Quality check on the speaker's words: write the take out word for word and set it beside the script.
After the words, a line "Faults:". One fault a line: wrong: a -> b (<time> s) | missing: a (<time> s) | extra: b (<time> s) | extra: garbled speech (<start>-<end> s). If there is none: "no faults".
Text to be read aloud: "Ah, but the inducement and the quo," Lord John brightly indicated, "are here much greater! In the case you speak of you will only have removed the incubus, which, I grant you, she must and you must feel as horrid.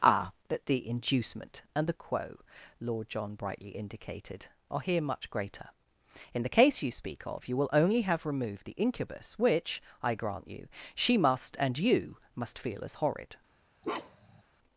"Ah, but the inducement and the quo," Lord John brightly indicated, "are here much greater! In the case you speak of you will only have removed the incubus, which, I grant you, she must and you must feel as horrid.
Faults:
no faults